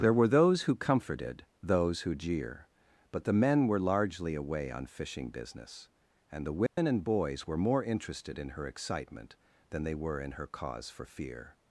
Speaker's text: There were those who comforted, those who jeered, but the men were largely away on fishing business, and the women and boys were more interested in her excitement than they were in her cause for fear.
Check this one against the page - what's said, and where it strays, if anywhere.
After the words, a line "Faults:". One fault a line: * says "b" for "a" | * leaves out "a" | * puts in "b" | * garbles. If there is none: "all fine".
There were those who comforted, those who jeer, but the men were largely away on fishing business, and the women and boys were more interested in her excitement than they were in her cause for fear.
Faults:
* says "jeer" for "jeered"